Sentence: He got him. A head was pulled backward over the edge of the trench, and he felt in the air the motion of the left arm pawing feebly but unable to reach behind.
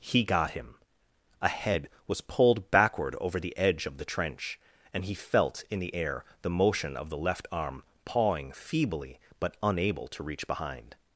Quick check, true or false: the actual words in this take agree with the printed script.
true